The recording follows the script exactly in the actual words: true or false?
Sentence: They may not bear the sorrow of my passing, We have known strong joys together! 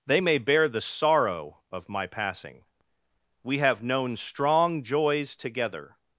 false